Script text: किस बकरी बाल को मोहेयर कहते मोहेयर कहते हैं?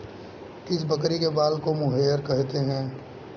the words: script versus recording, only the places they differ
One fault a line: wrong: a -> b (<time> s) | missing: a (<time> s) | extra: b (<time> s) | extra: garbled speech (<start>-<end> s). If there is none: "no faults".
extra: के (1.2 s)
missing: मोहेयर कहते (2.6 s)